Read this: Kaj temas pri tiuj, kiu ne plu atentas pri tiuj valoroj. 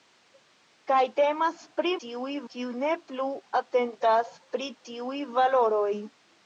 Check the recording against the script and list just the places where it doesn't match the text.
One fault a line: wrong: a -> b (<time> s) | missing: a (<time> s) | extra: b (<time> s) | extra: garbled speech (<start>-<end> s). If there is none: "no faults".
no faults